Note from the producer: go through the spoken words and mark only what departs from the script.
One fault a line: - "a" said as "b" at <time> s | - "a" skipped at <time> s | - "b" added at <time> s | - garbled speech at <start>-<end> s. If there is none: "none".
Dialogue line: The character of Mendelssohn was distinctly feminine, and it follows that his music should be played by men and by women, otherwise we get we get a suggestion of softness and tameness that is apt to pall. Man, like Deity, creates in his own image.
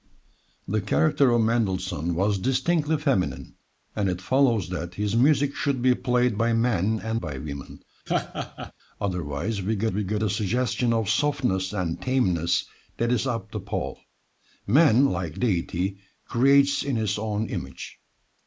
none